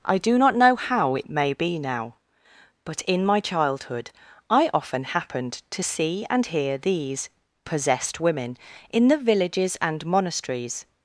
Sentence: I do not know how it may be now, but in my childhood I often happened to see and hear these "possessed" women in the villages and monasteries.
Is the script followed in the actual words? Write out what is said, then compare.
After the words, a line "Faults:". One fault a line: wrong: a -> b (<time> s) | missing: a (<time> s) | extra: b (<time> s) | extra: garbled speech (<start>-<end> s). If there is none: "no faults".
I do not know how it may be now, but in my childhood I often happened to see and hear these "possessed" women in the villages and monasteries.
Faults:
no faults